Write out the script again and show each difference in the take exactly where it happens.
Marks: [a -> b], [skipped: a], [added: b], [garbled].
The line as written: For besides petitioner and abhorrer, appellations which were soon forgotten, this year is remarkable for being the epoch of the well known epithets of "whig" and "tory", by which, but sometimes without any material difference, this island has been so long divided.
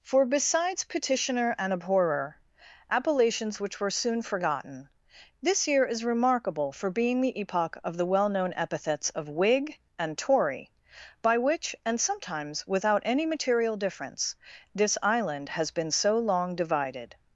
For besides petitioner and abhorrer, appellations which were soon forgotten, this year is remarkable for being the epoch of the well known epithets of "whig" and "tory", by which, [but -> and] sometimes without any material difference, this island has been so long divided.